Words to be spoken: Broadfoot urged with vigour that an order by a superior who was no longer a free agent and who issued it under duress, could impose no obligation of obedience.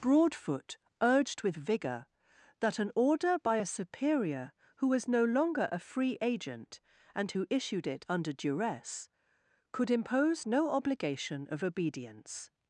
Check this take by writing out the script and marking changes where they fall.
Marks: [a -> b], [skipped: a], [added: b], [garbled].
Broadfoot urged with vigour that an order by a superior who was no longer a free agent and who issued it under duress, could impose no obligation of obedience.